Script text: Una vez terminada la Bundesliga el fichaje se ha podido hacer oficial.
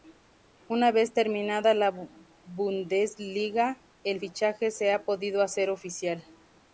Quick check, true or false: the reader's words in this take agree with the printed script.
true